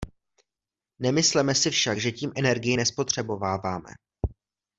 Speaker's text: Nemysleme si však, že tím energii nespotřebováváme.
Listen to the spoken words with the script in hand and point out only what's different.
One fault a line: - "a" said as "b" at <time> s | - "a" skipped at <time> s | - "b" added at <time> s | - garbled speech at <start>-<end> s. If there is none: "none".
none